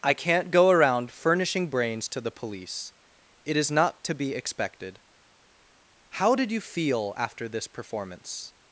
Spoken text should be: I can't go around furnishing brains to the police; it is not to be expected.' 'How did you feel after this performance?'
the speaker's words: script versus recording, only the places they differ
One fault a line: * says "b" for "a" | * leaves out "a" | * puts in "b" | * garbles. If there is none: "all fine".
all fine